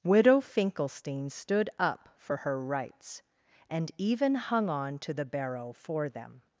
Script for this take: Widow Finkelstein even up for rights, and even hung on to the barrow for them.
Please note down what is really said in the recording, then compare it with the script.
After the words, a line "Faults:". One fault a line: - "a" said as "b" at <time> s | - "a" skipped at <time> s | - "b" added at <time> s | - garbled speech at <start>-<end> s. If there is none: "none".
Widow Finkelstein stood up for her rights, and even hung on to the barrow for them.
Faults:
- "even" said as "stood" at 1.3 s
- "her" added at 2.4 s